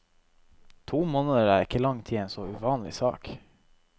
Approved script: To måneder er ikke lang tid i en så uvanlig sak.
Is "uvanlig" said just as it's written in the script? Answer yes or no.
yes